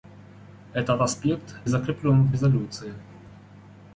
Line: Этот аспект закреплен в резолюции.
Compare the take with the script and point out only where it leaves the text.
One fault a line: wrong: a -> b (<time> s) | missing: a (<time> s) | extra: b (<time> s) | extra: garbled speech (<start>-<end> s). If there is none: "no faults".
no faults